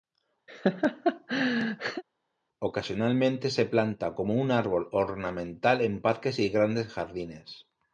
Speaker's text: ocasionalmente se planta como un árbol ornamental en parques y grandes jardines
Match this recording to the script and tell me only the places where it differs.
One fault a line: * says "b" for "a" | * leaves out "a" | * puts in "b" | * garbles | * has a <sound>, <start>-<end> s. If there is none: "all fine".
* has a laugh, 0.5-2.0 s